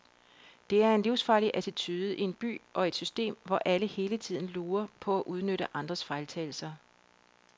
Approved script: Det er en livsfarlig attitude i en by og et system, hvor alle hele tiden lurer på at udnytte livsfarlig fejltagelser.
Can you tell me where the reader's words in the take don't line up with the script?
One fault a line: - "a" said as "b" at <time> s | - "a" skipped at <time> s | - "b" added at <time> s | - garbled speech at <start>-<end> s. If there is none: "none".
- "livsfarlig" said as "andres" at 5.7 s